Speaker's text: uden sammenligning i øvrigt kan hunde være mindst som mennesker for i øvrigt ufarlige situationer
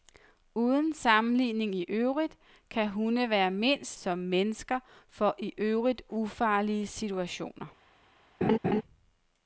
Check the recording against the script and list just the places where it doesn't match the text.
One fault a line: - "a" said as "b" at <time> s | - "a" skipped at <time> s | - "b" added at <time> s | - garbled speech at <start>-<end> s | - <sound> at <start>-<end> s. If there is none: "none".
- laugh at 8.4-8.8 s